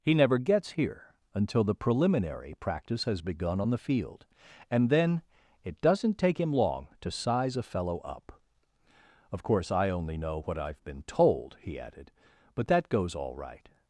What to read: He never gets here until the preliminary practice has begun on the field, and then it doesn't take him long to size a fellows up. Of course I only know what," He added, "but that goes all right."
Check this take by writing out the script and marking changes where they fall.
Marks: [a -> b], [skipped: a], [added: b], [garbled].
He never gets here until the preliminary practice has begun on the field, and then it doesn't take him long to size a [fellows -> fellow] up. Of course I only know what," [added: I've been told] He added, "but that goes all right."